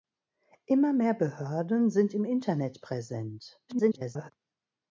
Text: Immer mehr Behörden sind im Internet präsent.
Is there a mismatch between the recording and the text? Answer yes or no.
yes